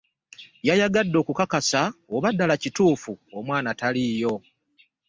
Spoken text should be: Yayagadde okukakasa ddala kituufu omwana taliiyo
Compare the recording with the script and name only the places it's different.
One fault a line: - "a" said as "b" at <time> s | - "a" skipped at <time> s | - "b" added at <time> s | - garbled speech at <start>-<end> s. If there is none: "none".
- "oba" added at 2.1 s